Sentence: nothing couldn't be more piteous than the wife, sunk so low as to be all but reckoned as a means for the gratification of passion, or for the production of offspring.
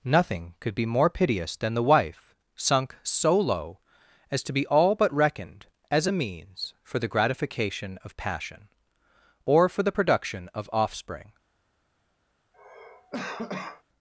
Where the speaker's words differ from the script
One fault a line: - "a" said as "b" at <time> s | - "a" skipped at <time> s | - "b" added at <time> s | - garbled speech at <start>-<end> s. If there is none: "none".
- "couldn't" said as "could" at 0.6 s